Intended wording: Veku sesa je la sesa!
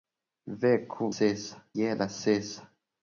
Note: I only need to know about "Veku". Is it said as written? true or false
true